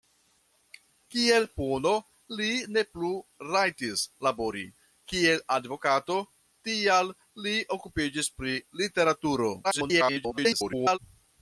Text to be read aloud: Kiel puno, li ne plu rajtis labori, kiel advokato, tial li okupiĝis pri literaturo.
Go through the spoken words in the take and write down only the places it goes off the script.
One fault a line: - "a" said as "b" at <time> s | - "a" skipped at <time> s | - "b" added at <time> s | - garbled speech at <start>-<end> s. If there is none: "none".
- garbled speech at 9.6-11.0 s